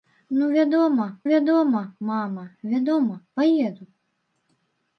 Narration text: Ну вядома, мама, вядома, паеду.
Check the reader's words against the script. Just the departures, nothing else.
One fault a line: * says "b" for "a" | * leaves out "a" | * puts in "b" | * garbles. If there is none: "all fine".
* puts in "вядома"